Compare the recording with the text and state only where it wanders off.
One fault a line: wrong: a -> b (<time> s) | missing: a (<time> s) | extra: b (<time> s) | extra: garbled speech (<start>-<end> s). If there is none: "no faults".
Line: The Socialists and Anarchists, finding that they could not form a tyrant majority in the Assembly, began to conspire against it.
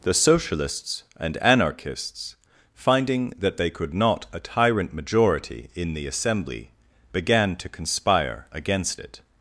missing: form (4.2 s)